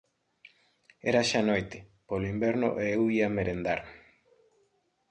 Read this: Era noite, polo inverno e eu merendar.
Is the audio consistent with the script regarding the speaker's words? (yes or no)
no